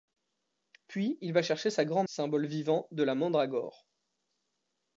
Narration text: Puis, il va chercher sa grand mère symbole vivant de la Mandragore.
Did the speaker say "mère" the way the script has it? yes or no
no